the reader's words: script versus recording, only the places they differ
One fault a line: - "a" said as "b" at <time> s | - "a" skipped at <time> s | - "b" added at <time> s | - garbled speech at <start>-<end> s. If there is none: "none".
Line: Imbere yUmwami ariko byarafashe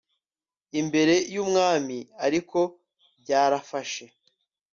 none